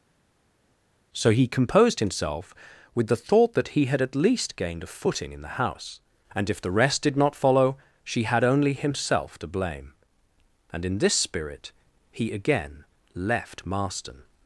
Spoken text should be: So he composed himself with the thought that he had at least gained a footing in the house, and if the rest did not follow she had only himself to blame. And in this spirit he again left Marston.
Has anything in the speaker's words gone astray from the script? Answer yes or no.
no